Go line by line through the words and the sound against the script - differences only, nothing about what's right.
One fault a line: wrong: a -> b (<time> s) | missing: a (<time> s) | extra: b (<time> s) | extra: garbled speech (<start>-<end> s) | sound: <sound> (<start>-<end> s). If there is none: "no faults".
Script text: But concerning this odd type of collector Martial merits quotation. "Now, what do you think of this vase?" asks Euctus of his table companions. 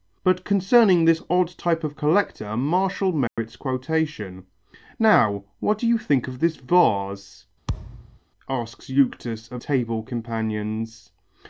sound: dropout (3.3-3.4 s)
sound: thud (7.7-8.2 s)
missing: his (9.6 s)